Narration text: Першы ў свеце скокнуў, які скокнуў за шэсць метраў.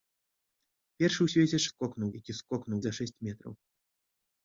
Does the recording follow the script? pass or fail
pass